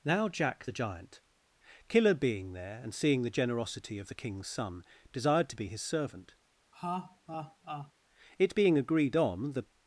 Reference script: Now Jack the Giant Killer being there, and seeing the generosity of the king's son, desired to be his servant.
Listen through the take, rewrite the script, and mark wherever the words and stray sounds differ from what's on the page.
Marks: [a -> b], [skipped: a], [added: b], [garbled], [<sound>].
Now Jack the Giant Killer being there, and seeing the generosity of the king's son, desired to be his servant. [laugh] [added: It being agreed on the]